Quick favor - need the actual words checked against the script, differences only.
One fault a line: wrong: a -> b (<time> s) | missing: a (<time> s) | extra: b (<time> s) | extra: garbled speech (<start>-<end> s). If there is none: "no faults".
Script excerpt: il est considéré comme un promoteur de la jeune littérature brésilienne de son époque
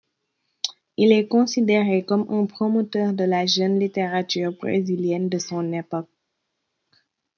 no faults